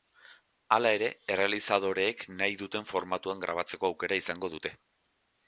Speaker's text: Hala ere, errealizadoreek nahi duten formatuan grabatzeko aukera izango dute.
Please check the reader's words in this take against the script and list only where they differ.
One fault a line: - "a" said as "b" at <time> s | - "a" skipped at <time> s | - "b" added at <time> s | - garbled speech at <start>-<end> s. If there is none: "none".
none